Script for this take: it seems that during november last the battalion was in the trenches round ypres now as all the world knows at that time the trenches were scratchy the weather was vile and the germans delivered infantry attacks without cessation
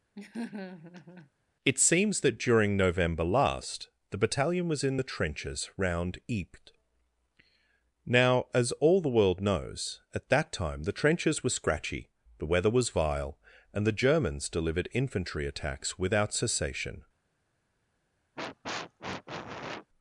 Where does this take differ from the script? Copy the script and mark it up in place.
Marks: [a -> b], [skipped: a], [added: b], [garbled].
it seems that during november last the battalion was in the trenches round ypres now as all the world knows at that time the trenches were scratchy the weather was vile and the germans delivered infantry attacks without cessation